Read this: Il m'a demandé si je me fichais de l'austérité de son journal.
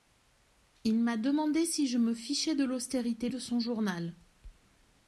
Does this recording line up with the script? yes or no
yes